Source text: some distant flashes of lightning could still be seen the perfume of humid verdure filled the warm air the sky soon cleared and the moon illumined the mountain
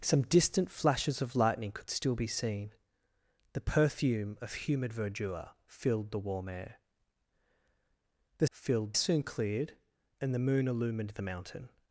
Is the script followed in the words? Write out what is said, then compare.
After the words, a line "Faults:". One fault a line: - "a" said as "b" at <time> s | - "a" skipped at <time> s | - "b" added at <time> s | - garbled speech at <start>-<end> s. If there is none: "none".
some distant flashes of lightning could still be seen the perfume of humid verdure filled the warm air the filled soon cleared and the moon illumined the mountain
Faults:
- "sky" said as "filled" at 8.5 s